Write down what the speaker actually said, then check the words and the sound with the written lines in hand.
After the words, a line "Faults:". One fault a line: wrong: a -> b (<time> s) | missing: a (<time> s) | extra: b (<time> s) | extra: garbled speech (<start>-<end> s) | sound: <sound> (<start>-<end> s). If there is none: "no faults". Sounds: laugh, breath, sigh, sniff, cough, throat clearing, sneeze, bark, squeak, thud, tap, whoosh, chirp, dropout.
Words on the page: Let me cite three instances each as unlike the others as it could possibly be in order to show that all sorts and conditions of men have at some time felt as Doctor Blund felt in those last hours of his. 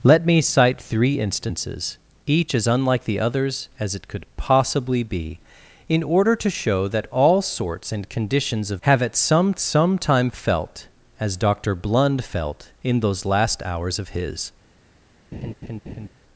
Let me cite three instances each as unlike the others as it could possibly be in order to show that all sorts and conditions of have at some some time felt as Doctor Blund felt in those last hours of his.
Faults:
missing: men (8.8 s)
extra: some (9.6 s)
sound: laugh (15.3-16.1 s)